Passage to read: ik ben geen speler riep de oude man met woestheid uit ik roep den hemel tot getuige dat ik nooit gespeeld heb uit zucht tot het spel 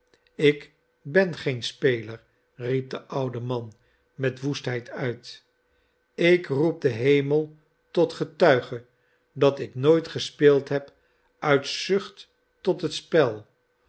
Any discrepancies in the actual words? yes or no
no